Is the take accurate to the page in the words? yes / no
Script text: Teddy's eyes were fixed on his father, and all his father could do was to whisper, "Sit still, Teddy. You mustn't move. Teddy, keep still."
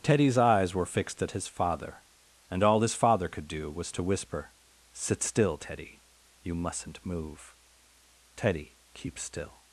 no